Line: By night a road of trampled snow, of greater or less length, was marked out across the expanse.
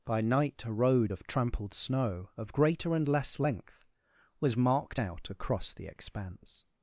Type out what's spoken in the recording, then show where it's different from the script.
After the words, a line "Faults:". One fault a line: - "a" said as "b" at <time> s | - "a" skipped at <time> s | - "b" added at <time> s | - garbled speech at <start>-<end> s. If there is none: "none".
By night a road of trampled snow, of greater and less length, was marked out across the expanse.
Faults:
- "or" said as "and" at 2.9 s